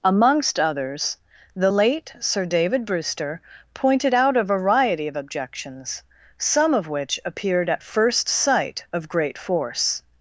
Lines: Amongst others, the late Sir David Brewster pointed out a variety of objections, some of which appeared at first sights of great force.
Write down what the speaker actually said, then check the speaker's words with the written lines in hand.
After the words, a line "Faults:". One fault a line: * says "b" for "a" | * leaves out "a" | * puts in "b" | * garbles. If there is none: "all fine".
Amongst others, the late Sir David Brewster pointed out a variety of objections, some of which appeared at first sight of great force.
Faults:
* says "sight" for "sights"